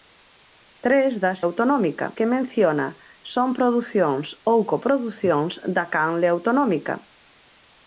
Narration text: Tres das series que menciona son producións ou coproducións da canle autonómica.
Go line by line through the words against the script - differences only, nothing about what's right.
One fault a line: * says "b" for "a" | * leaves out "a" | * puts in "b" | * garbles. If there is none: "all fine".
* says "autonómica" for "series"